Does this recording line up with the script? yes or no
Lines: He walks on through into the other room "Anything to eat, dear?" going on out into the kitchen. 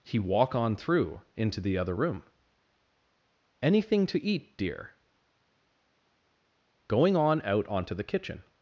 no